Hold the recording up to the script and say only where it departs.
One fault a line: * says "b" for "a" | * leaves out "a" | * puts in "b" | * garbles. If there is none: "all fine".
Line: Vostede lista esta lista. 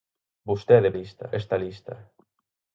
all fine